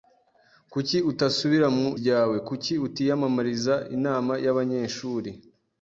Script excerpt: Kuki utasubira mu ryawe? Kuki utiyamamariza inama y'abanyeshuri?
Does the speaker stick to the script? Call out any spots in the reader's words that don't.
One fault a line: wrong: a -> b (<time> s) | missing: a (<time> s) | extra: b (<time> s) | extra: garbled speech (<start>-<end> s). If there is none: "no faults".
no faults